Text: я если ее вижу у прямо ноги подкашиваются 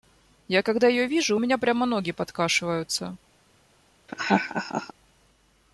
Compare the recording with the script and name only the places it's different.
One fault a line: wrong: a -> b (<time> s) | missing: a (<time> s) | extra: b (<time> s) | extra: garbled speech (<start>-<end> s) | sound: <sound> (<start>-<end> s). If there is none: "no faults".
wrong: если -> когда (0.6 s)
extra: меня (1.4 s)
sound: laugh (4.1-4.9 s)